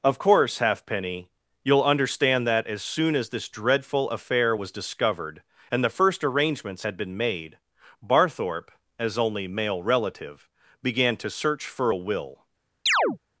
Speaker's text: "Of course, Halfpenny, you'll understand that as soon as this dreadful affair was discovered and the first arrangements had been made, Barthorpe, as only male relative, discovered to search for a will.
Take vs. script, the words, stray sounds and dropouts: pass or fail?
fail